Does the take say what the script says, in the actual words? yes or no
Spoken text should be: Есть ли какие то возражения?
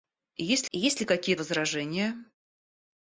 no